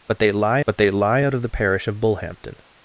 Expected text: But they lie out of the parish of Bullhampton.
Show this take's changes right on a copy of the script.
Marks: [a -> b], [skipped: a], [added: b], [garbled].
But they lie [added: but they lie] out of the parish of Bullhampton.